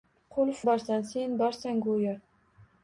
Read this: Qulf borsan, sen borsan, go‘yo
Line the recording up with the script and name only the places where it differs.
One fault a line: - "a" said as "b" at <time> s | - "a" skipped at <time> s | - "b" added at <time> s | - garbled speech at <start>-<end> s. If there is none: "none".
none